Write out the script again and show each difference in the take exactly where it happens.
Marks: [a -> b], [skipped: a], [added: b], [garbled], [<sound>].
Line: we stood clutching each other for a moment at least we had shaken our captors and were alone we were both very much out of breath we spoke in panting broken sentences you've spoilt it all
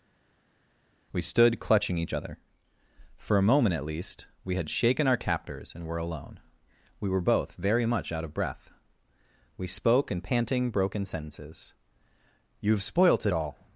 we stood clutching each other for a moment at least we had shaken our captors and were alone we were both very much out of breath we spoke in panting broken sentences you've spoilt it all